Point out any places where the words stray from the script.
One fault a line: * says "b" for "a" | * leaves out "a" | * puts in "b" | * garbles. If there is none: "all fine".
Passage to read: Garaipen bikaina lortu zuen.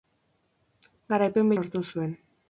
* leaves out "bikaina"